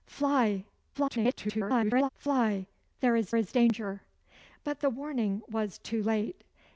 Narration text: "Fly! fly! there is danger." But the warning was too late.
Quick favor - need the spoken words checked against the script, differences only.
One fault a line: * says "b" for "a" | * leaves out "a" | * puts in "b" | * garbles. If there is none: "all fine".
* garbles
* puts in "is"